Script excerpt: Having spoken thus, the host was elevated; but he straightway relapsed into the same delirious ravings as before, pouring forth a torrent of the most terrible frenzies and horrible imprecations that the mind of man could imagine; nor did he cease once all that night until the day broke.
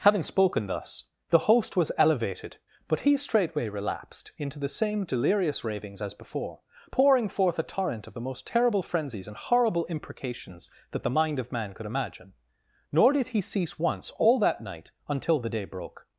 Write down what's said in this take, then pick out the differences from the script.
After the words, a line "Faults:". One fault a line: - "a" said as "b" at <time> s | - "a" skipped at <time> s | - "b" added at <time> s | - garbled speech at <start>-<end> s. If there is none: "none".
Having spoken thus, the host was elevated; but he straightway relapsed into the same delirious ravings as before, pouring forth a torrent of the most terrible frenzies and horrible imprecations that the mind of man could imagine; nor did he cease once all that night until the day broke.
Faults:
none